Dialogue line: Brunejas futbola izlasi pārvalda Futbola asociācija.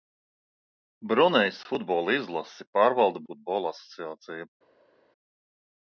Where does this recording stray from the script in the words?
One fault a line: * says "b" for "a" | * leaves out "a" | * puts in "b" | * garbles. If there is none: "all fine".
all fine